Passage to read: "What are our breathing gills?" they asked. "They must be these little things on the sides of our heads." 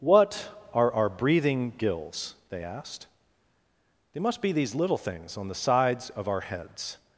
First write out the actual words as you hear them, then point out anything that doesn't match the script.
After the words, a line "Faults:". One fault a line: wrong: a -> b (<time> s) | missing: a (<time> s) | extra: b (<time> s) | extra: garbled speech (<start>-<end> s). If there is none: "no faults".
"What are our breathing gills?" they asked. "They must be these little things on the sides of our heads."
Faults:
no faults